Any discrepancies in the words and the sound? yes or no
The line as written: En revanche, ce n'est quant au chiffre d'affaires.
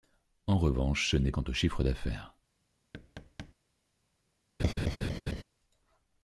yes